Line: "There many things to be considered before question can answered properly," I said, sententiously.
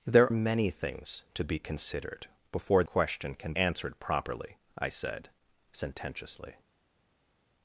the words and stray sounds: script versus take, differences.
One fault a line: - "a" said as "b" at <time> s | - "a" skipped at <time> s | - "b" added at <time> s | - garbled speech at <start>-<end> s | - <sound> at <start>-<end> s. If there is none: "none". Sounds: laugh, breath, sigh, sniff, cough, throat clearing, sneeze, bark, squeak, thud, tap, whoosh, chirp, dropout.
none